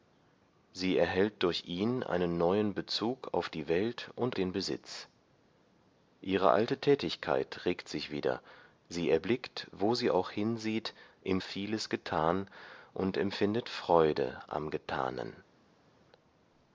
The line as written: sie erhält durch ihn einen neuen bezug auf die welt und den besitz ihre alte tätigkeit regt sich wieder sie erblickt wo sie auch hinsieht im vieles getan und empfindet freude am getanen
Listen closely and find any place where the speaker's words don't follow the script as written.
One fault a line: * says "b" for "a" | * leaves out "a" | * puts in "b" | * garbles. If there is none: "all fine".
all fine